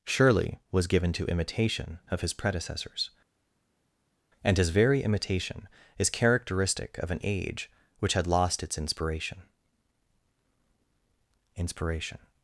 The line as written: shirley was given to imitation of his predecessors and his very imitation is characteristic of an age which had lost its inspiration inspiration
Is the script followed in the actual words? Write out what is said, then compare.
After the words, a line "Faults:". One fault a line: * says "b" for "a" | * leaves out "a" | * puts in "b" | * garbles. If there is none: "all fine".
shirley was given to imitation of his predecessors and his very imitation is characteristic of an age which had lost its inspiration inspiration
Faults:
all fine